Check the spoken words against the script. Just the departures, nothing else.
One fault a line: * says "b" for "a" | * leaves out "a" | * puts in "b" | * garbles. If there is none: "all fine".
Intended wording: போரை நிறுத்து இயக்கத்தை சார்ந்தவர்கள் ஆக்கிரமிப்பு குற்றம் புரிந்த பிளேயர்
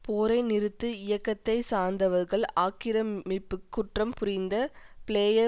all fine